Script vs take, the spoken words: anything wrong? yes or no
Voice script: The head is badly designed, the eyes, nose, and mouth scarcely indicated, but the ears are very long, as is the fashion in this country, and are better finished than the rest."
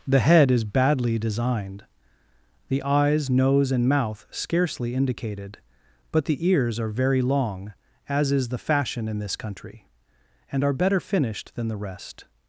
no